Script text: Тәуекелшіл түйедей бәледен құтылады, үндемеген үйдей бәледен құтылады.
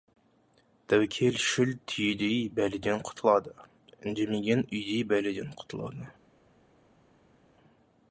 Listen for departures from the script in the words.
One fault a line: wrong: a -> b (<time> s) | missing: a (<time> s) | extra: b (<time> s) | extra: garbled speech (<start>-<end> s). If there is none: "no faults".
no faults